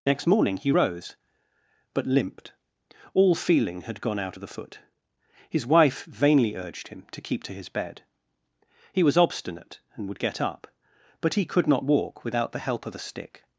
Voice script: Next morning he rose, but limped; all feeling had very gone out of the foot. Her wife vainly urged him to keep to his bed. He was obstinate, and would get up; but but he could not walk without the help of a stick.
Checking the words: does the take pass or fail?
fail